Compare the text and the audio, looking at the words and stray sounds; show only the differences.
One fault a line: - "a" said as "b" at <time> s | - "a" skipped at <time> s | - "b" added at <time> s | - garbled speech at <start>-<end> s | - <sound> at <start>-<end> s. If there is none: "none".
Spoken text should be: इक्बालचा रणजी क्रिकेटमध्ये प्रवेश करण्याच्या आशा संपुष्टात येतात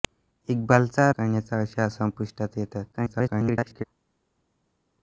- "रणजी क्रिकेटमध्ये प्रवेश" skipped at 1.1 s
- garbled speech at 2.9-3.8 s